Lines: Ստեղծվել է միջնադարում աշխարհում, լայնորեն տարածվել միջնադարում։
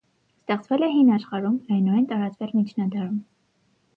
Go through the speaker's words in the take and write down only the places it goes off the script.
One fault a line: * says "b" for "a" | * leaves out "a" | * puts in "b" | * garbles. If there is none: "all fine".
* says "հին" for "միջնադարում"